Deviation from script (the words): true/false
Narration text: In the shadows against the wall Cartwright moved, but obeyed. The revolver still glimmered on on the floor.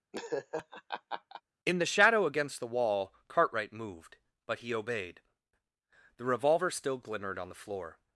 true